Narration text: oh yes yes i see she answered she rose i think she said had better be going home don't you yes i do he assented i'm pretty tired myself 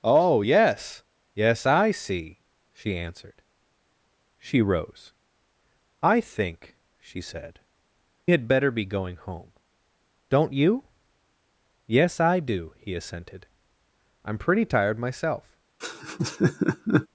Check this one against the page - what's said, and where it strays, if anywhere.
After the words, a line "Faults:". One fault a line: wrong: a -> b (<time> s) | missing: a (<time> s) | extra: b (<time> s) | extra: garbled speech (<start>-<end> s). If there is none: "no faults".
oh yes yes i see she answered she rose i think she said had better be going home don't you yes i do he assented i'm pretty tired myself
Faults:
no faults